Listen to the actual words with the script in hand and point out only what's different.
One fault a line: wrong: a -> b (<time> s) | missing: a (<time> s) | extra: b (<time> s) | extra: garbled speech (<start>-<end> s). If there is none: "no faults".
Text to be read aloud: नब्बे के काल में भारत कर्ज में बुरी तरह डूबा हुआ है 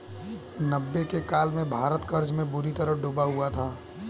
wrong: है -> था (3.5 s)